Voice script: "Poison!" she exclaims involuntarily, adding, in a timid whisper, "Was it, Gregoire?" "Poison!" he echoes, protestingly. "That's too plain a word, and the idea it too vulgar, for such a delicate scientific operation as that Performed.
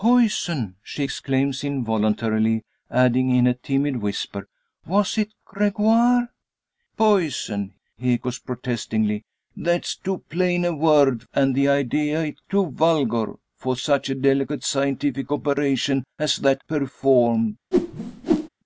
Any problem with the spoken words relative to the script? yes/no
no